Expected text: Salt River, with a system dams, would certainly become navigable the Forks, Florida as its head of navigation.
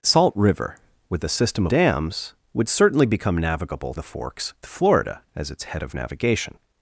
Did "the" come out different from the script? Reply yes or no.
no